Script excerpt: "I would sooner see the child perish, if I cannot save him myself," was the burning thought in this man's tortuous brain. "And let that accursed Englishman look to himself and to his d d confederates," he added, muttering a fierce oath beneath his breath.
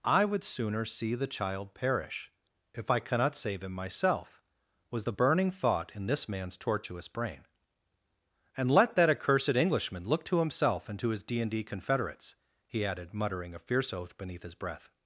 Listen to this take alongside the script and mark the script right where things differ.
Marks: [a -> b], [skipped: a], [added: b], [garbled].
"I would sooner see the child perish, if I cannot save him myself," was the burning thought in this man's tortuous brain. "And let that accursed Englishman look to himself and to his d [added: and] d confederates," he added, muttering a fierce oath beneath his breath.